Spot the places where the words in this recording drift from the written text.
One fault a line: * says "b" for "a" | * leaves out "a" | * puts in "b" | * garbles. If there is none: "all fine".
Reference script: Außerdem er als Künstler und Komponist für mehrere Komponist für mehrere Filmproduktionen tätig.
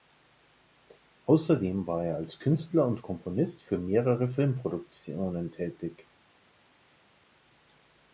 * puts in "war"
* leaves out "Komponist für mehrere"